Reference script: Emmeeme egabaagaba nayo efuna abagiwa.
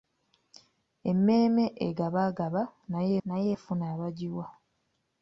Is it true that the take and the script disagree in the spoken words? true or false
true